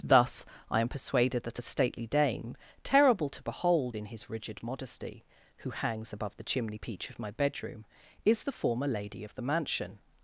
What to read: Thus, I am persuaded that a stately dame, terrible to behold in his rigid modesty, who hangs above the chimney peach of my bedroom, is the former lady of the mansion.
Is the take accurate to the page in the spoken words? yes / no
yes